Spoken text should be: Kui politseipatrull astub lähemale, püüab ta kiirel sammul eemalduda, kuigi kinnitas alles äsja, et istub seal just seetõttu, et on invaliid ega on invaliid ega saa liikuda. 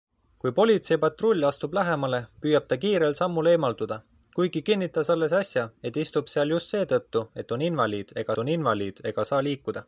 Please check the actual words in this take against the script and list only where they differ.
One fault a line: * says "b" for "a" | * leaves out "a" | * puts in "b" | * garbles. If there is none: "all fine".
all fine